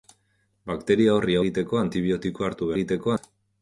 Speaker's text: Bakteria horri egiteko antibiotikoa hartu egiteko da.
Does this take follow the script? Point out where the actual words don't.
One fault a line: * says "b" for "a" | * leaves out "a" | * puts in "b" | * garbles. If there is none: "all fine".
all fine